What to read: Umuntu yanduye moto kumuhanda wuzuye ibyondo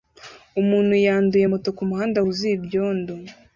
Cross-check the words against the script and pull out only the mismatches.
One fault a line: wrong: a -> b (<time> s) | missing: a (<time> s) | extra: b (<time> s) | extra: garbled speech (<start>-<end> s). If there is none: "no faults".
no faults